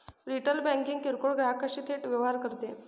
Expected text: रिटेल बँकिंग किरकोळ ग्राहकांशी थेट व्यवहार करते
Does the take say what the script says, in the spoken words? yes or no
yes